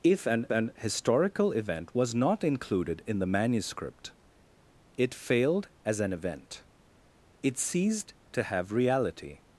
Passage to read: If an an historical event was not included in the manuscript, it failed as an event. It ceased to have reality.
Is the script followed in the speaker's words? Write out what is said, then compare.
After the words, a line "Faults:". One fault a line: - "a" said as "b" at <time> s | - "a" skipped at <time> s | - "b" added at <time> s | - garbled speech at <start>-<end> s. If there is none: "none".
If an an historical event was not included in the manuscript, it failed as an event. It ceased to have reality.
Faults:
none